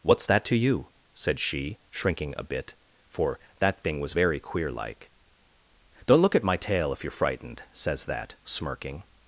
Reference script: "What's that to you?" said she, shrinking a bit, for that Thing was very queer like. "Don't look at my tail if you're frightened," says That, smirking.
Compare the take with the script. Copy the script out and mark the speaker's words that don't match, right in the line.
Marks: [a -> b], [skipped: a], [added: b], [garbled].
"What's that to you?" said she, shrinking a bit, for that Thing was very queer like. "Don't look at my tail if you're frightened," says That, smirking.